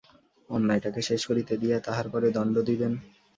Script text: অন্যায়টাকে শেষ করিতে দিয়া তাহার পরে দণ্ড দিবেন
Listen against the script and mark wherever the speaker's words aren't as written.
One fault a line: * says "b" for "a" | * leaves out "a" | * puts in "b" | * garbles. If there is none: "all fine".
all fine